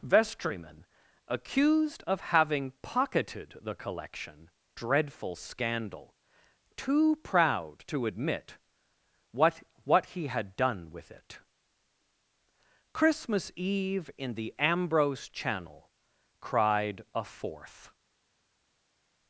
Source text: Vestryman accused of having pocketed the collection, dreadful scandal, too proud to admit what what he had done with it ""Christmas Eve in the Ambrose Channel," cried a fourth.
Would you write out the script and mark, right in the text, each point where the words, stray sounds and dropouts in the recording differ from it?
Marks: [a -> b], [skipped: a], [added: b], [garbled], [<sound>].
Vestryman accused of having pocketed the collection, dreadful scandal, too proud to admit what what he had done with it ""Christmas Eve in the Ambrose Channel," cried a fourth.